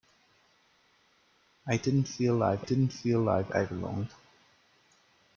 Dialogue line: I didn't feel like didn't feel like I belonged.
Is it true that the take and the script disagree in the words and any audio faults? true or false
false